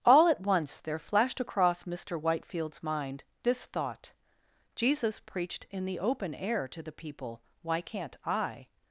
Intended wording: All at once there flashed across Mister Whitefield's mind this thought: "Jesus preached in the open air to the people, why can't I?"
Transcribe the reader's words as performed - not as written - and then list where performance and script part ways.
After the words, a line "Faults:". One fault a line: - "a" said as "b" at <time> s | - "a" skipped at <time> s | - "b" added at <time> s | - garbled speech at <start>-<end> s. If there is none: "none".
All at once there flashed across Mister Whitefield's mind this thought: "Jesus preached in the open air to the people, why can't I?"
Faults:
none